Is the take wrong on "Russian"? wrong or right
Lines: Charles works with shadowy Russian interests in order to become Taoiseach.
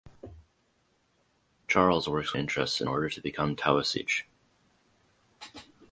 wrong